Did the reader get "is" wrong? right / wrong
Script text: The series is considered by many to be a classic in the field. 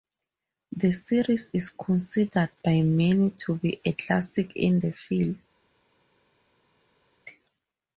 right